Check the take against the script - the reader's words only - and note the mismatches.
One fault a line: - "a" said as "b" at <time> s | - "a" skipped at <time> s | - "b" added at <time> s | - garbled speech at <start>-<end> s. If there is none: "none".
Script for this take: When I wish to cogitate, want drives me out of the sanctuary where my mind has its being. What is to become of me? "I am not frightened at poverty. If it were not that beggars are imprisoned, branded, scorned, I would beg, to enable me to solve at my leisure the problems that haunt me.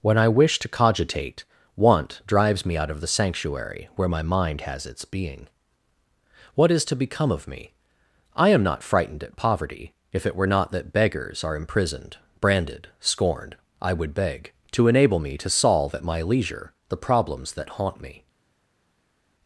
none